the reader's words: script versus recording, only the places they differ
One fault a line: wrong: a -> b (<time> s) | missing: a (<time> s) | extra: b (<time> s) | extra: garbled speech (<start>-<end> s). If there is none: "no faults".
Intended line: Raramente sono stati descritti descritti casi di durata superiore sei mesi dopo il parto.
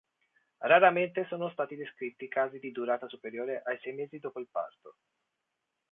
missing: descritti (2.3 s)
extra: ai (3.7 s)